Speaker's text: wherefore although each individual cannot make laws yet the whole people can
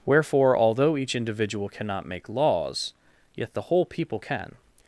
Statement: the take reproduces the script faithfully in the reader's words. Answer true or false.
true